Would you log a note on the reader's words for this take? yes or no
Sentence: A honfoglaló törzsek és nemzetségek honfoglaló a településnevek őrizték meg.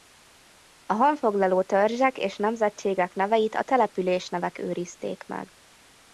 yes